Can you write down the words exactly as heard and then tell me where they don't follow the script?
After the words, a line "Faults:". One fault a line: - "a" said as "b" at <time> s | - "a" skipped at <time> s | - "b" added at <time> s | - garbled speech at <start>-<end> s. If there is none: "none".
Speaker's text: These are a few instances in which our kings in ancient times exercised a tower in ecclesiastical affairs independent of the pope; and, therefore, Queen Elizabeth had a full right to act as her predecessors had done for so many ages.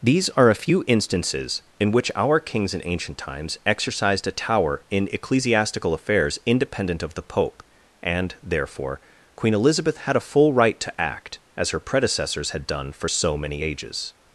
These are a few instances in which our kings in ancient times exercised a tower in ecclesiastical affairs independent of the pope; and, therefore, Queen Elizabeth had a full right to act as her predecessors had done for so many ages.
Faults:
none